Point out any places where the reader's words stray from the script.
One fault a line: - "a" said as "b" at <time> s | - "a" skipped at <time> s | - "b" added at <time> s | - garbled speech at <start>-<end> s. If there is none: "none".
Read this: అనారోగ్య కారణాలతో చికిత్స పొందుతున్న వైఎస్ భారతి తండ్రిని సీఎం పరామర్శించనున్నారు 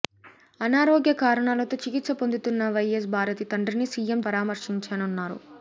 none